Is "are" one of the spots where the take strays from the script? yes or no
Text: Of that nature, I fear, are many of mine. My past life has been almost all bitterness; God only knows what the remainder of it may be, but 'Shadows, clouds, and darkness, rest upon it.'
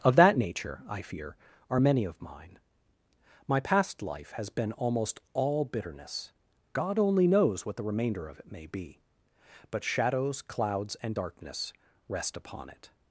no